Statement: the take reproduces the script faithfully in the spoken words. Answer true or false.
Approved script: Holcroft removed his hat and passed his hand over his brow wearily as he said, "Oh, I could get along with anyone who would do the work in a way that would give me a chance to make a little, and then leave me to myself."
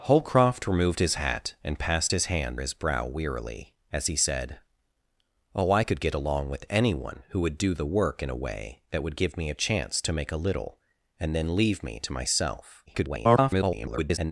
false